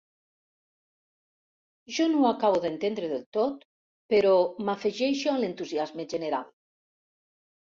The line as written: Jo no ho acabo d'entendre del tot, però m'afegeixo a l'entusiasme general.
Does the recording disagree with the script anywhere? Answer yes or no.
no